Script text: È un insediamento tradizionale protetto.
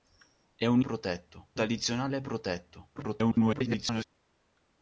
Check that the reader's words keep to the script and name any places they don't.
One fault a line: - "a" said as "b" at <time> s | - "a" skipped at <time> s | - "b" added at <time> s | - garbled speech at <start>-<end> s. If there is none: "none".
- "insediamento" said as "protetto" at 0.8 s
- garbled speech at 3.0-4.0 s